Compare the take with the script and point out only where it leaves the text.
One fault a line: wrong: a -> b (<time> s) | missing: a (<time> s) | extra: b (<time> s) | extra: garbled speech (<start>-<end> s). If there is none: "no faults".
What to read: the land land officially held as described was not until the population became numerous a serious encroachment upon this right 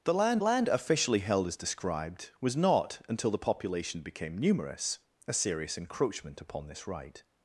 no faults